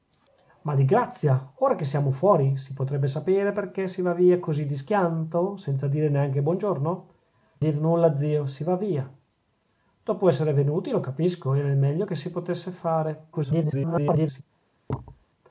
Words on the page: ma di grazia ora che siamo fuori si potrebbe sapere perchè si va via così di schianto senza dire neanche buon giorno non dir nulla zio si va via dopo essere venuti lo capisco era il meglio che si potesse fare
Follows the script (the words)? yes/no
no